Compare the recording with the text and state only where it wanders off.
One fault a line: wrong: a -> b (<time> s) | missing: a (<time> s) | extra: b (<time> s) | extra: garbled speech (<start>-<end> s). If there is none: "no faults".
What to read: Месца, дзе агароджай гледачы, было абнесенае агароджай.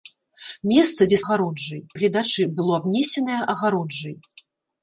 no faults